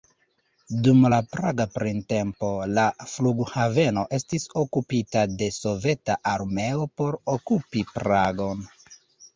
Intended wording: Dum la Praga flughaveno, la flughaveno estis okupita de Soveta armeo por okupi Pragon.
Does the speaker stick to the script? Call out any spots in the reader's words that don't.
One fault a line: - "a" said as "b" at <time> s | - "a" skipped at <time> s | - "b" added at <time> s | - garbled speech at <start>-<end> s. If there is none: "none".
- "flughaveno" said as "printempo" at 1.7 s